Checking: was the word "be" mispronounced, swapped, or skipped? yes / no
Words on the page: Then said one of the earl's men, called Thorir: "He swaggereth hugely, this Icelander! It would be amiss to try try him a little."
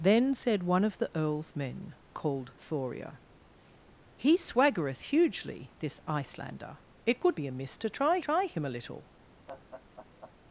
no